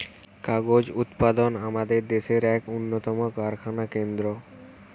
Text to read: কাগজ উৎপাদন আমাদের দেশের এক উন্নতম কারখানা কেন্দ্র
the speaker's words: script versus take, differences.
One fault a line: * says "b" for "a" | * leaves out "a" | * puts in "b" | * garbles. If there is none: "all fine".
all fine